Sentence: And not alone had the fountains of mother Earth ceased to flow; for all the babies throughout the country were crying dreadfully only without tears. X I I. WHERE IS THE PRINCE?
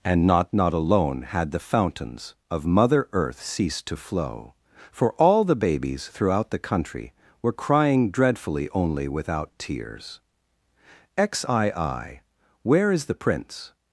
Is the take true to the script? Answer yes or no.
no